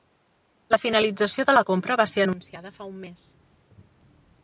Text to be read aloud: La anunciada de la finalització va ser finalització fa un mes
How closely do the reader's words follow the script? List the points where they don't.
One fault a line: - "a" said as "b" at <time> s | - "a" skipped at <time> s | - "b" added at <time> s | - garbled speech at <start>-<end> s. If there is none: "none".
- "anunciada" said as "finalització" at 0.8 s
- "finalització" said as "compra" at 1.7 s
- "finalització" said as "anunciada" at 2.3 s